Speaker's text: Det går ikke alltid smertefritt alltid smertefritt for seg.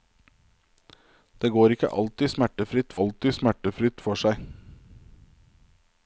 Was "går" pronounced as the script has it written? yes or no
yes